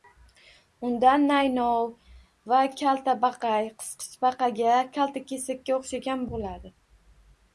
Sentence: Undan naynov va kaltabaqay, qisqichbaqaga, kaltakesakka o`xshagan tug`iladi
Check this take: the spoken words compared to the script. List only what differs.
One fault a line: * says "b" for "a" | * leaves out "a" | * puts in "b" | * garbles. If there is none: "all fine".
all fine